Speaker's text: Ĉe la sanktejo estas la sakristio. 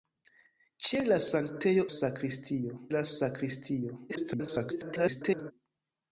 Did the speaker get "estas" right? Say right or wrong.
wrong